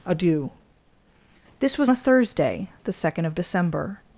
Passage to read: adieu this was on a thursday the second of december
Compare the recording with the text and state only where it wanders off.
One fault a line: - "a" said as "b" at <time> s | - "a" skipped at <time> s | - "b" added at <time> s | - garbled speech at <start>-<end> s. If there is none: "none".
- "on" skipped at 1.9 s